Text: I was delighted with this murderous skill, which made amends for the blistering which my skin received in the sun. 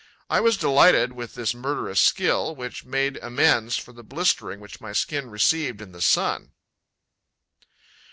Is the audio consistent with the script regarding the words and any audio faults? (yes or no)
yes